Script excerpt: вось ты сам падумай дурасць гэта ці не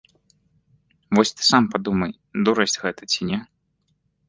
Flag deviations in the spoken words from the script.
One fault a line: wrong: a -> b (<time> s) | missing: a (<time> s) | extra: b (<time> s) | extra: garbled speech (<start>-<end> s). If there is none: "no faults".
no faults